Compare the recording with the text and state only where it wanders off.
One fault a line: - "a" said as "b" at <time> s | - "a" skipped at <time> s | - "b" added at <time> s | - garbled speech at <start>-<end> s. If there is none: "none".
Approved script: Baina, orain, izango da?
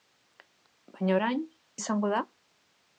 none